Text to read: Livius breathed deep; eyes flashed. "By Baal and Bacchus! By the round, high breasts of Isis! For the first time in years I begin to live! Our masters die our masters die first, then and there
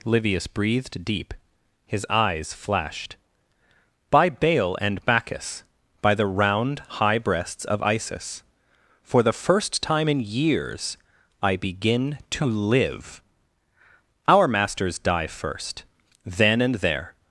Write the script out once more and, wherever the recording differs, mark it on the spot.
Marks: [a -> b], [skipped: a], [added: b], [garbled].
Livius breathed deep; [added: his] eyes flashed. "By Baal and Bacchus! By the round, high breasts of Isis! For the first time in years I begin to live! Our masters die [skipped: our masters die] first, then and there